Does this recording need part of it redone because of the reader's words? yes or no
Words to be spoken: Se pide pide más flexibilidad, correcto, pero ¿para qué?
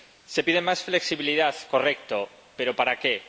yes